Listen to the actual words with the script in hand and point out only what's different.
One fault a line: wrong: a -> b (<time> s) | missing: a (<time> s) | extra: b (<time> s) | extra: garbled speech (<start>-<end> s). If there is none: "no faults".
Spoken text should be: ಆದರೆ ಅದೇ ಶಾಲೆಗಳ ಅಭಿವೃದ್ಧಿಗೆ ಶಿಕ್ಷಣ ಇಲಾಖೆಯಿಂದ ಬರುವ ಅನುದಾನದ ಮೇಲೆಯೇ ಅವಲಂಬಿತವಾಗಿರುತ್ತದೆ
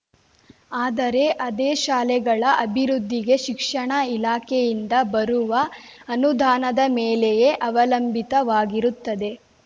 no faults